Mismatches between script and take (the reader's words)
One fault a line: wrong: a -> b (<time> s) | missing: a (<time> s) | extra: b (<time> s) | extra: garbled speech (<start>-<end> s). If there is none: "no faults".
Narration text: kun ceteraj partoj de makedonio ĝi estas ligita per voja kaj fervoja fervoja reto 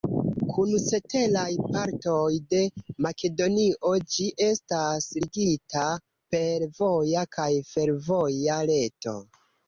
missing: fervoja (8.6 s)